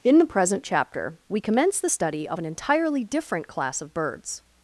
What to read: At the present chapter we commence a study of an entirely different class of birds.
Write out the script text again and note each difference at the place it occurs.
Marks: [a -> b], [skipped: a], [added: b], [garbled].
[At -> In] the present chapter we commence [a -> the] study of an entirely different class of birds.